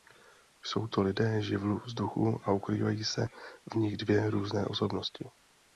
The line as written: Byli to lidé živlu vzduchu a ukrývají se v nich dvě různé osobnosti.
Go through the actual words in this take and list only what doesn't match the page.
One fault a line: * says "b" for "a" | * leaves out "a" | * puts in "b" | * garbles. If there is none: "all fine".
* says "Jsou" for "Byli"